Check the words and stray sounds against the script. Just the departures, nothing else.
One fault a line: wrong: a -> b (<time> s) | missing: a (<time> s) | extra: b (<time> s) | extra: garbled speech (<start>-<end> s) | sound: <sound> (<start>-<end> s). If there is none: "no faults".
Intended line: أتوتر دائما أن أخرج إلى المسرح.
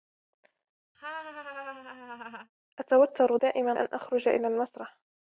sound: laugh (0.9-2.5 s)